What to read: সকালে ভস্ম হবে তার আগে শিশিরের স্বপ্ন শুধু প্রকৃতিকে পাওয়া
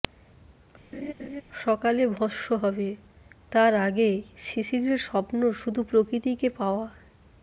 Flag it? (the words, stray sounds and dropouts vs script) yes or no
yes